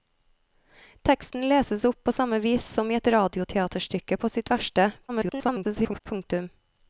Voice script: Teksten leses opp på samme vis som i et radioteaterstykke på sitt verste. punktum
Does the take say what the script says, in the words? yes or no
no